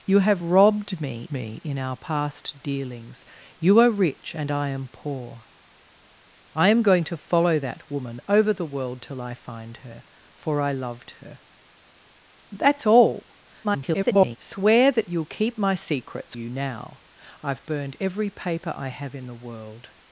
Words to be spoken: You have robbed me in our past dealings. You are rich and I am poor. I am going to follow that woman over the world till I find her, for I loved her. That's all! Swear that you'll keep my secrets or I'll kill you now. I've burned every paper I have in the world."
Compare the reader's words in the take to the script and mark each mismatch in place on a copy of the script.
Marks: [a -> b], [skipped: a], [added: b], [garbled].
You have robbed me [added: me] in our past dealings. You are rich and I am poor. I am going to follow that woman over the world till I find her, for I loved her. That's all! [garbled] Swear that you'll keep my secrets [skipped: or I'll kill] you now. I've burned every paper I have in the world."